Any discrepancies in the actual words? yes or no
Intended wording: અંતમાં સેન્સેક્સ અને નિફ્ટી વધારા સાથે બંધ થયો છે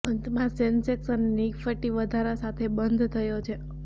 no